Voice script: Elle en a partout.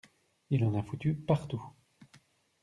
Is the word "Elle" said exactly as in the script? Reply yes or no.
no